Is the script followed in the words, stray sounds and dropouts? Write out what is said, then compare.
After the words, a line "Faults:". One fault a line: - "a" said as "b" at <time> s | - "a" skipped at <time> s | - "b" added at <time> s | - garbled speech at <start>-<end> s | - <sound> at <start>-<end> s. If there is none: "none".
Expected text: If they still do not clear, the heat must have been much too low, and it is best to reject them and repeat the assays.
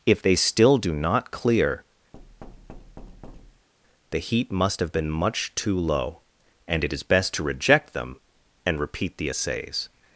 If they still do not clear, the heat must have been much too low, and it is best to reject them and repeat the assays.
Faults:
- thud at 2.1-3.7 s